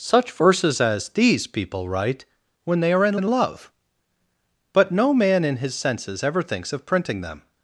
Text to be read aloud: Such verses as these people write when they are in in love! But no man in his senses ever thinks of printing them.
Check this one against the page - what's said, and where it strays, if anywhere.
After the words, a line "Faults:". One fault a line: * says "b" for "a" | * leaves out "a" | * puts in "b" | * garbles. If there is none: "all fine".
Such verses as these people write when they are in in love! But no man in his senses ever thinks of printing them.
Faults:
all fine